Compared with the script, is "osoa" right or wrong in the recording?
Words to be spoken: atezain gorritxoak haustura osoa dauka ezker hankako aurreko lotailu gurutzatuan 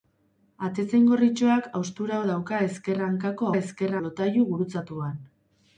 wrong